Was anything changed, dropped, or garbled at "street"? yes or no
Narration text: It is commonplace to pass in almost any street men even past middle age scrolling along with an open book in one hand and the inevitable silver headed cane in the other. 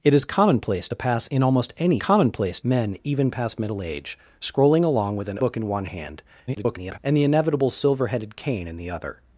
yes